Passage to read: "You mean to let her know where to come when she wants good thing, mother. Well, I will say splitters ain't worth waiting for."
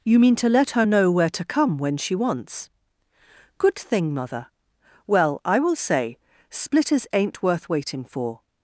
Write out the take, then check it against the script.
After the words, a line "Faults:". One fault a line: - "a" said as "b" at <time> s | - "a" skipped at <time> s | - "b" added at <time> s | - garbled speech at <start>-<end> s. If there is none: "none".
"You mean to let her know where to come when she wants good thing, mother. Well, I will say splitters ain't worth waiting for."
Faults:
none